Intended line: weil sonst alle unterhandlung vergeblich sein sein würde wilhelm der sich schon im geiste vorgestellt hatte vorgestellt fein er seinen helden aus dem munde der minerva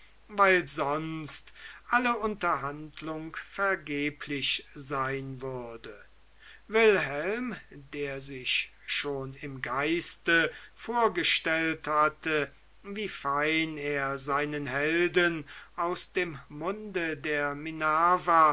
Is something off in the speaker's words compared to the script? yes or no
yes